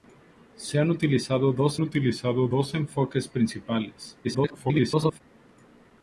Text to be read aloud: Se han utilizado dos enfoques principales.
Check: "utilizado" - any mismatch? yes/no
no